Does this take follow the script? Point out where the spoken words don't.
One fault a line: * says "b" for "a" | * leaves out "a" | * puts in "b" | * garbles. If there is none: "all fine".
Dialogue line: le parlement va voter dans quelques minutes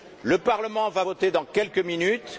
all fine